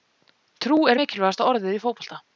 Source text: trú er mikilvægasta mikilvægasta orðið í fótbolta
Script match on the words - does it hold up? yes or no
no